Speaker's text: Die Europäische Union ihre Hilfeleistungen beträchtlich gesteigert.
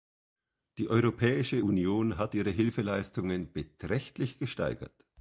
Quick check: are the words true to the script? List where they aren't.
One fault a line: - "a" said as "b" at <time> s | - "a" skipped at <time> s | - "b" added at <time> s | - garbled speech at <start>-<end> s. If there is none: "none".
- "hat" added at 2.2 s